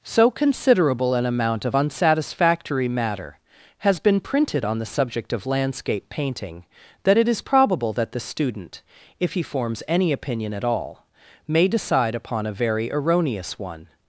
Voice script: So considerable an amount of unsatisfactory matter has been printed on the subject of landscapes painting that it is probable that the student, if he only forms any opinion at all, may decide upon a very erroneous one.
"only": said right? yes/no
no